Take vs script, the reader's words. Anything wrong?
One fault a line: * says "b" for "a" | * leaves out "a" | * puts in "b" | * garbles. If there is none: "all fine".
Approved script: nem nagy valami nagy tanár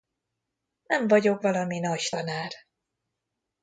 * says "vagyok" for "nagy"